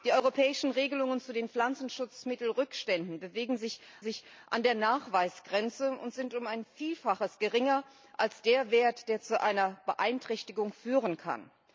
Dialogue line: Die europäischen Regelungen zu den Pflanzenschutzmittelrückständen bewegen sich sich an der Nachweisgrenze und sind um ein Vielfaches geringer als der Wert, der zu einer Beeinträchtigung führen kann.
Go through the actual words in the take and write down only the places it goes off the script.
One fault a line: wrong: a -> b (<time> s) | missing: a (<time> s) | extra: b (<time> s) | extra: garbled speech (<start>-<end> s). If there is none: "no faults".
no faults